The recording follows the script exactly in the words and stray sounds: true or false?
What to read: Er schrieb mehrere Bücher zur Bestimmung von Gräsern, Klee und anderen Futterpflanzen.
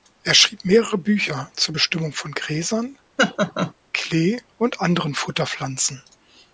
false